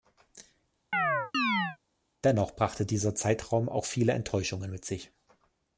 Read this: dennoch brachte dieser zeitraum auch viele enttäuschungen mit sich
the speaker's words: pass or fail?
pass